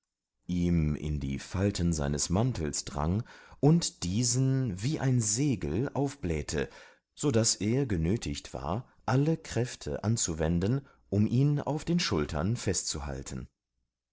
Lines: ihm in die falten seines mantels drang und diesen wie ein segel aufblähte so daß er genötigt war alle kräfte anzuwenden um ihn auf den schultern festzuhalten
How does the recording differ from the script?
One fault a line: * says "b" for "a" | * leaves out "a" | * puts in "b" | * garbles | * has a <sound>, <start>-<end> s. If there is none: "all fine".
all fine